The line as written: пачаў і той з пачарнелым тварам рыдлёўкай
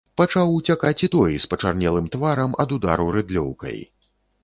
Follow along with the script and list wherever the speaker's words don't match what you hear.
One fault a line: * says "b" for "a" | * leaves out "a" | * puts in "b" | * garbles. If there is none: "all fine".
* puts in "уцякаць"
* puts in "ад удару"